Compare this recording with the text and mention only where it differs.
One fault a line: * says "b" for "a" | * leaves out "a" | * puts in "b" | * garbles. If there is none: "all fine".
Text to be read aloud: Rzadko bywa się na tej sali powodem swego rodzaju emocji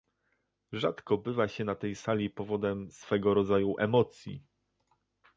all fine